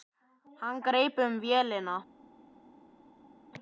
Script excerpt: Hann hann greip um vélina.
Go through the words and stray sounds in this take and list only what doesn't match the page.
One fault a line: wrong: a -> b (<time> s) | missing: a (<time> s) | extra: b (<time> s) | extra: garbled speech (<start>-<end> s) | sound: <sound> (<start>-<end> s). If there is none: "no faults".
missing: hann (0.8 s)